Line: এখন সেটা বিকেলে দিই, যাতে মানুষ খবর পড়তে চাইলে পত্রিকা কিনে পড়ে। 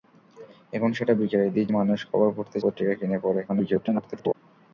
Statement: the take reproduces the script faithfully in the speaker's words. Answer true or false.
false